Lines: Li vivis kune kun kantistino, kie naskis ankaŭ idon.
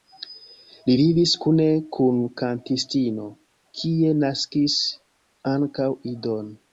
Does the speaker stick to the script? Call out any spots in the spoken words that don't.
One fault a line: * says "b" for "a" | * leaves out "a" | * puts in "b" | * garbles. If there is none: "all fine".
all fine